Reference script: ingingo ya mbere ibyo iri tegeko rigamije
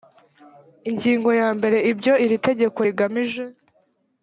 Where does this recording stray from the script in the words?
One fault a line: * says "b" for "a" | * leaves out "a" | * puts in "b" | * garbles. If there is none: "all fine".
all fine